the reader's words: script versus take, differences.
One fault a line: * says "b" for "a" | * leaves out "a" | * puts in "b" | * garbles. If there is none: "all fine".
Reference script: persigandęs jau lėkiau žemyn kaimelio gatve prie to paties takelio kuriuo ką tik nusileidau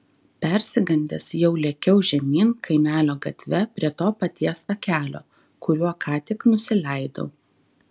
all fine